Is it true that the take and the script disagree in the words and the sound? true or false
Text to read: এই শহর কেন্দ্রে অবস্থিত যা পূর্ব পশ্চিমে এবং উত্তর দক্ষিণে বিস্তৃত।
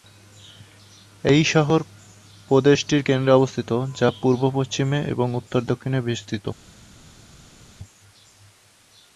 true